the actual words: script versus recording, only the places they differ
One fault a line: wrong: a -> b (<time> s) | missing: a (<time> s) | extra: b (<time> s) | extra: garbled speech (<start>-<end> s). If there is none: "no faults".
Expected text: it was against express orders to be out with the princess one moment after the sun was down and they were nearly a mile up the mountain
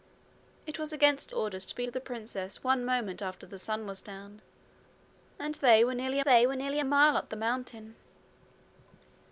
missing: express (1.3 s)
missing: out (1.9 s)
extra: they were nearly (6.2 s)